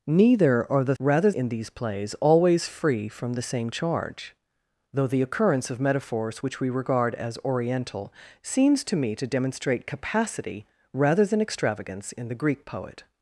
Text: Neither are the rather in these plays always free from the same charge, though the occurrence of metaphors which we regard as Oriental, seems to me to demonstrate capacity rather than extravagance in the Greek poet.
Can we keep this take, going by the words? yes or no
yes